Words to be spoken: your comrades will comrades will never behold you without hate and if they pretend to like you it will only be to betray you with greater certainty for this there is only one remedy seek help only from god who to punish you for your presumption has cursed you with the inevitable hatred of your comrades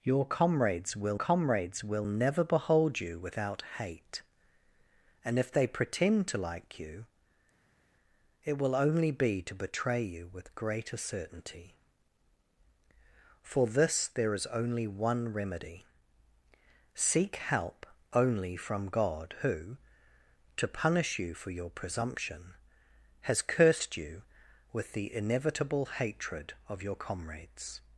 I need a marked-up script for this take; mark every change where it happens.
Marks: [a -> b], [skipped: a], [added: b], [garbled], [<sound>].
your comrades will comrades will never behold you without hate and if they pretend to like you it will only be to betray you with greater certainty for this there is only one remedy seek help only from god who to punish you for your presumption has cursed you with the inevitable hatred of your comrades